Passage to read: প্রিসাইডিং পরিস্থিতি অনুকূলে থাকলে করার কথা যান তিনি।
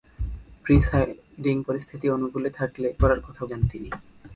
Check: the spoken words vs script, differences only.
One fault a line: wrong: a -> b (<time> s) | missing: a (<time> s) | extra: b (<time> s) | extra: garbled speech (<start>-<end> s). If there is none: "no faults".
no faults